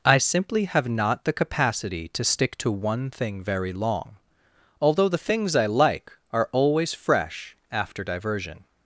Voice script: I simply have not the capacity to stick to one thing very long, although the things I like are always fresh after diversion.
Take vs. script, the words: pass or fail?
pass